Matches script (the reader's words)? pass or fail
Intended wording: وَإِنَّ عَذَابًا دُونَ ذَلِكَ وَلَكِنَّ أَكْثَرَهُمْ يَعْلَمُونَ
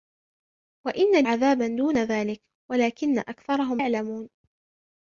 pass